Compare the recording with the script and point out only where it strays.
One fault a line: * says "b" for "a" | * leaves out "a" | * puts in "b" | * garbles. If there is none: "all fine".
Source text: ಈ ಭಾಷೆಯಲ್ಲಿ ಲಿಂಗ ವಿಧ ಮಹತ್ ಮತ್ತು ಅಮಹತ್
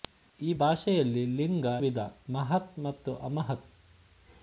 all fine